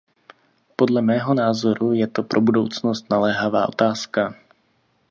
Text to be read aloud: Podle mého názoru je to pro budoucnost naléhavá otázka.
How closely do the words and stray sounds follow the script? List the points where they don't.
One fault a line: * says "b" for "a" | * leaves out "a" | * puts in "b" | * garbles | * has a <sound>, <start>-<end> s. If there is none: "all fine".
all fine